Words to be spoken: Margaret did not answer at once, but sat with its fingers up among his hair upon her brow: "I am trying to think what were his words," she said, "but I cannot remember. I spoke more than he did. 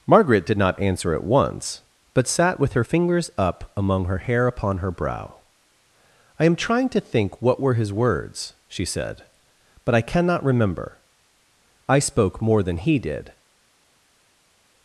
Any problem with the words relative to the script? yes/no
yes